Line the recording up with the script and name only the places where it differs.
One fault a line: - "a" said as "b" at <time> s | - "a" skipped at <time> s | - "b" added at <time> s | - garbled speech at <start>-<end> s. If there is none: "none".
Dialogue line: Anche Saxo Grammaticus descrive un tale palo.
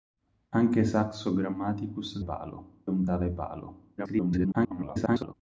- "descrive" said as "palo" at 2.2 s
- garbled speech at 4.0-5.3 s